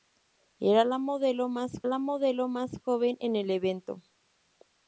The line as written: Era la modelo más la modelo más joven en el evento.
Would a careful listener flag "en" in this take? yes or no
no